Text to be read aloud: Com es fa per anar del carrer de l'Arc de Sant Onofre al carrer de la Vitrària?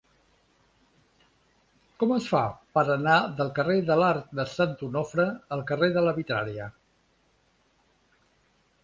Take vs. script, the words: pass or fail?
pass